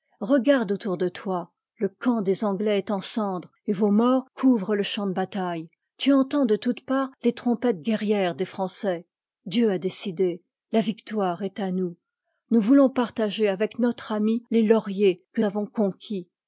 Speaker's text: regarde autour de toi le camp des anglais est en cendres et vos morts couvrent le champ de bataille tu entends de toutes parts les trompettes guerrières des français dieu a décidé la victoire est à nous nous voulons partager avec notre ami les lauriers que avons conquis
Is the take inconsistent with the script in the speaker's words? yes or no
no